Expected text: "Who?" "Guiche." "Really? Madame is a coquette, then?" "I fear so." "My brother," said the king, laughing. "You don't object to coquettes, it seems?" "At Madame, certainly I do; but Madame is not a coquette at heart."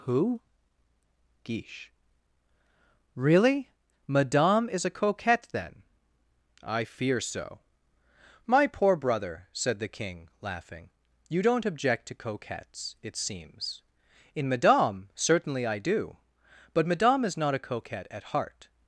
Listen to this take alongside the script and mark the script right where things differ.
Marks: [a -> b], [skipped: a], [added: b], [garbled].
"Who?" "Guiche." "Really? Madame is a coquette, then?" "I fear so." "My [added: poor] brother," said the king, laughing. "You don't object to coquettes, it seems?" ["At -> In] Madame, certainly I do; but Madame is not a coquette at heart."